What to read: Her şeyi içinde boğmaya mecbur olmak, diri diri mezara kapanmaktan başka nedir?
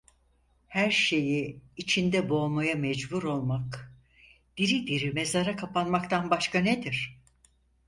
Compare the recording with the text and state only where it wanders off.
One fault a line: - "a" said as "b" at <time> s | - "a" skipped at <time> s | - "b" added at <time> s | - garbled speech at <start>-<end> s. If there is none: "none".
none